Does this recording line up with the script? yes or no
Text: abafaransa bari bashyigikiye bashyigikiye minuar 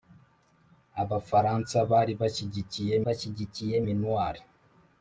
yes